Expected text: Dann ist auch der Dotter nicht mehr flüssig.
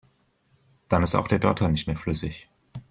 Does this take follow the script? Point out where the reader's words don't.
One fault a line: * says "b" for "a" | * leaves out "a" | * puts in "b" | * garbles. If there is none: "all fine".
all fine